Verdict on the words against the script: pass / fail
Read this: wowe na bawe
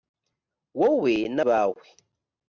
pass